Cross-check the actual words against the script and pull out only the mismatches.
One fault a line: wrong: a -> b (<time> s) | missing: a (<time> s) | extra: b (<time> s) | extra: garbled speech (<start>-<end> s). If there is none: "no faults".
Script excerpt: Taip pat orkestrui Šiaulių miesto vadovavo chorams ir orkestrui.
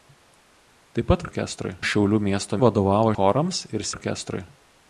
no faults